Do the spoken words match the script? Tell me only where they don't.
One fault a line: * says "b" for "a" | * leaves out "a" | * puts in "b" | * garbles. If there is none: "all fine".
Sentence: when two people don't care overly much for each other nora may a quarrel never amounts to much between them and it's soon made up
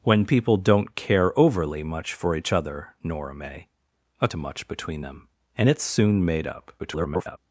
* leaves out "two"
* leaves out "quarrel never amounts"
* garbles